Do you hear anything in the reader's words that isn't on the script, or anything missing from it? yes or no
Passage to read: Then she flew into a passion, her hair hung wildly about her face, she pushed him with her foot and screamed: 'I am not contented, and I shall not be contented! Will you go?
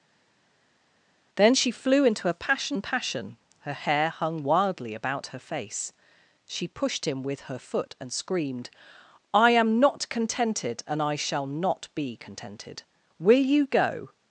yes